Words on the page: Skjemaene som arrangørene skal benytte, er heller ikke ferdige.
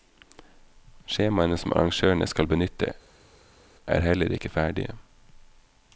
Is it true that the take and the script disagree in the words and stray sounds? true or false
false